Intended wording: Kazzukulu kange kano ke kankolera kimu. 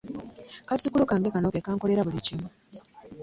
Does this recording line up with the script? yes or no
no